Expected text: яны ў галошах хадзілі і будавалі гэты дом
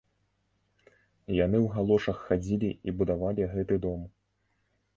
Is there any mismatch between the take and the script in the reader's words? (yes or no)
no